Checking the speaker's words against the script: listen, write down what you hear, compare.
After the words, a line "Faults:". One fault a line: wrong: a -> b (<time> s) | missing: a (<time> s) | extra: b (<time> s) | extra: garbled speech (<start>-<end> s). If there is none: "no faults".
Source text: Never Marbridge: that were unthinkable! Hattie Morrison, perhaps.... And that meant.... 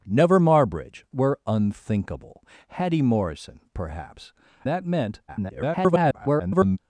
Never Marbridge: were unthinkable! Hattie Morrison, perhaps.... That meant.... [garbled]
Faults:
missing: that (1.1 s)
missing: And (4.3 s)
extra: garbled speech (5.3-6.8 s)